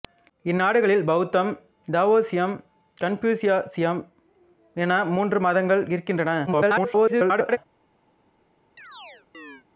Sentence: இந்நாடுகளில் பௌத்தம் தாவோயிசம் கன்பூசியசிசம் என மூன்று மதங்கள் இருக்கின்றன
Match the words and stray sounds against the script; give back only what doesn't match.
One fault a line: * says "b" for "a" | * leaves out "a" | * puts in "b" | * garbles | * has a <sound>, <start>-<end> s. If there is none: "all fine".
* garbles
* has a chirp, 8.8-9.6 s